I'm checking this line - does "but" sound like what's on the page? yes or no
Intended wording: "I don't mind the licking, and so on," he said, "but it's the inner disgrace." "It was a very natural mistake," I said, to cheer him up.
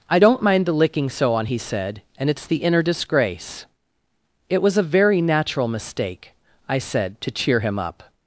no